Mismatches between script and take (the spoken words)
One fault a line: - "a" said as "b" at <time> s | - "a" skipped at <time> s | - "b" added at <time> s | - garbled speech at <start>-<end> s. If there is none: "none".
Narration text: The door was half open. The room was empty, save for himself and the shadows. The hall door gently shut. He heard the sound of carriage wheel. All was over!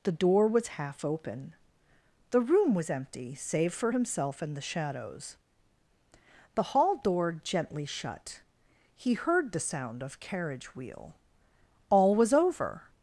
none